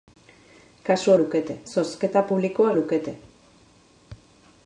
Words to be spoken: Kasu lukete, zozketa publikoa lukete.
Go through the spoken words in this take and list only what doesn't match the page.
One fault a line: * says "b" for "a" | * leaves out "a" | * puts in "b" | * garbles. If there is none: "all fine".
all fine